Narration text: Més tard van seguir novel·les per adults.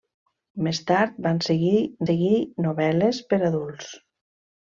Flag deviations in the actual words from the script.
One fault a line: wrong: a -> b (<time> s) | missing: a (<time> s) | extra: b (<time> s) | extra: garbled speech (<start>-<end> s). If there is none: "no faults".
extra: seguir (2.1 s)